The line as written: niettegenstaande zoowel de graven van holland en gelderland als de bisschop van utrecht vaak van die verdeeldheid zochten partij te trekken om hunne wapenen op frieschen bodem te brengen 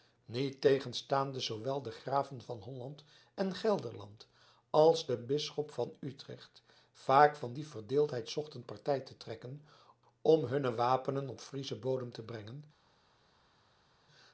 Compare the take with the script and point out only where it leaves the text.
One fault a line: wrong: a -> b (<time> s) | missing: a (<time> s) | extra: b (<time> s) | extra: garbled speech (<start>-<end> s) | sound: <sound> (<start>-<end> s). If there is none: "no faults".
no faults